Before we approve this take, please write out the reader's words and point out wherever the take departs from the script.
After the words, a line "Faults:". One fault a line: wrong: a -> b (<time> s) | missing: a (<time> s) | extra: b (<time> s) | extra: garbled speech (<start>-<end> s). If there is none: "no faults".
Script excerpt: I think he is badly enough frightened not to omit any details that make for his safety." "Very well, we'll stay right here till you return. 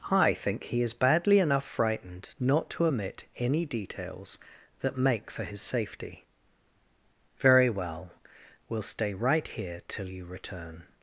I think he is badly enough frightened not to omit any details that make for his safety." "Very well, we'll stay right here till you return.
Faults:
no faults